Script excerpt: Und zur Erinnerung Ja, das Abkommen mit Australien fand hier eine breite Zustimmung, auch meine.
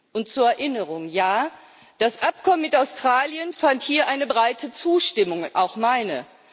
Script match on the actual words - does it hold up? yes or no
yes